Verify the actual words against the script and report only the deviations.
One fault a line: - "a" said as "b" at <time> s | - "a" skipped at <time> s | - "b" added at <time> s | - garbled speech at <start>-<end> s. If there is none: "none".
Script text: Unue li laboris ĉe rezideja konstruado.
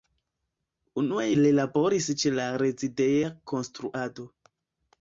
- "la" added at 2.4 s